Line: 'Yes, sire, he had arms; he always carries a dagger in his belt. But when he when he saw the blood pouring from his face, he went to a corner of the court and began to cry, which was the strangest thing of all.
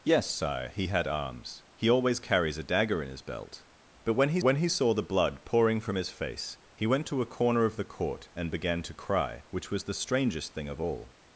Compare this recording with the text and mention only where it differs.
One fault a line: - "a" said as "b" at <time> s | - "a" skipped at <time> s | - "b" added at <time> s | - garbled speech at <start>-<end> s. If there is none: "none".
none